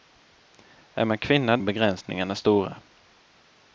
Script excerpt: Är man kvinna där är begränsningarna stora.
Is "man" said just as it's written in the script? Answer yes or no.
yes